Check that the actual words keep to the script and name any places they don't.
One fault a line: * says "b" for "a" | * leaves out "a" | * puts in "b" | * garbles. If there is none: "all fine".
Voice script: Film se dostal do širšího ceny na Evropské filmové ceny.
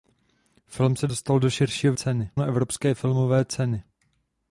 all fine